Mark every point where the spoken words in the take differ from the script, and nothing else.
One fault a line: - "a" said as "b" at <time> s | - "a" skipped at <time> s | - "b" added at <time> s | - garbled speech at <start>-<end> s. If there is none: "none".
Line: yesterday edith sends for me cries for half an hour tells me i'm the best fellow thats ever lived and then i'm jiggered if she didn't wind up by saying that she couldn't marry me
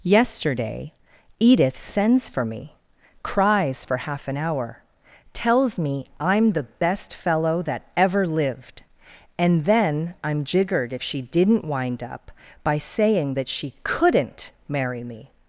- "thats" said as "that" at 7.6 s